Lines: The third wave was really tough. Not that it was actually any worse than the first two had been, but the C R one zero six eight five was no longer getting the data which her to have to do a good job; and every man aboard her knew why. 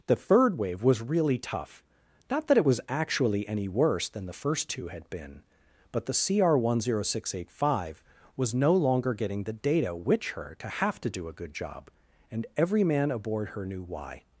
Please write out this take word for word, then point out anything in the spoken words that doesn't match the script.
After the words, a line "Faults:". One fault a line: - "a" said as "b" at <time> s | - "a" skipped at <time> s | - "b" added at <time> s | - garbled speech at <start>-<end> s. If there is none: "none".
The third wave was really tough. Not that it was actually any worse than the first two had been, but the C R one zero six eight five was no longer getting the data which her to have to do a good job; and every man aboard her knew why.
Faults:
none